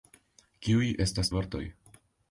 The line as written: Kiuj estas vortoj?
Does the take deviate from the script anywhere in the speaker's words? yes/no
no